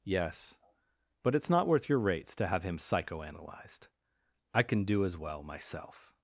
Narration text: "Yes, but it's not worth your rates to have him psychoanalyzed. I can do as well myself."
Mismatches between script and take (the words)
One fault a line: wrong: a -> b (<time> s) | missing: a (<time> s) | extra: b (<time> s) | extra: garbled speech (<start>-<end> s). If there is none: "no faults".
no faults